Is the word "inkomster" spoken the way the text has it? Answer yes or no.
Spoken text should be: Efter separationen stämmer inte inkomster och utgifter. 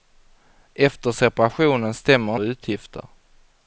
no